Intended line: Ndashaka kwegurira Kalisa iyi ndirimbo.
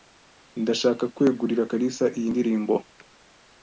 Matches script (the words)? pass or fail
pass